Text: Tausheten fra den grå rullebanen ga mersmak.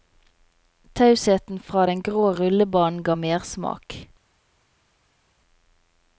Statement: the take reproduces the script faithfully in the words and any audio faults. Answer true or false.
true